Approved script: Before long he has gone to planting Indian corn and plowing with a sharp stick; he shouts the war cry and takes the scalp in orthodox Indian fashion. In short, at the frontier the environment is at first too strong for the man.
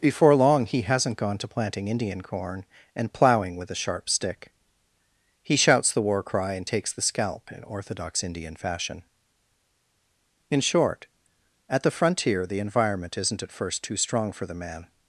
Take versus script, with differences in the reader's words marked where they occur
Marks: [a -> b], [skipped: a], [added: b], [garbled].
Before long he [has -> hasn't] gone to planting Indian corn and plowing with a sharp stick; he shouts the war cry and takes the scalp in orthodox Indian fashion. In short, at the frontier the environment [is -> isn't] at first too strong for the man.